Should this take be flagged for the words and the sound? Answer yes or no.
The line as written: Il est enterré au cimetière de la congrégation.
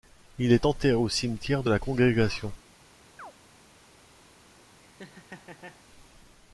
yes